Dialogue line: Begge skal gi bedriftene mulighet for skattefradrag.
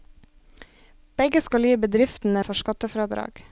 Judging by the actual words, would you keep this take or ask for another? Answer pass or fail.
fail